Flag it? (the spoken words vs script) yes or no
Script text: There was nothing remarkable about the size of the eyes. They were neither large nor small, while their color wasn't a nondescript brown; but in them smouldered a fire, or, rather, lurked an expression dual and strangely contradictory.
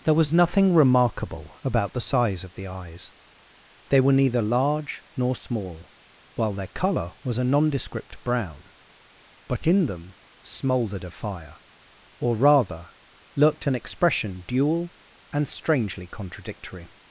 yes